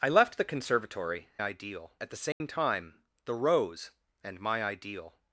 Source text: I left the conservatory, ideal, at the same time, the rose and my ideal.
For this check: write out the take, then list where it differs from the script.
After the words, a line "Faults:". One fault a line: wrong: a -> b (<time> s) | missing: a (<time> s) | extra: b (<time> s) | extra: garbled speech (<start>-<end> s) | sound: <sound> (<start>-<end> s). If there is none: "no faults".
I left the conservatory, ideal, at the same time, the rose and my ideal.
Faults:
sound: dropout (2.3-2.4 s)